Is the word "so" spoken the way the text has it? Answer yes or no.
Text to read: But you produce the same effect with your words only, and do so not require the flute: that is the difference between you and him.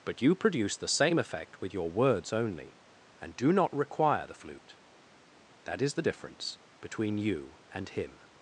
no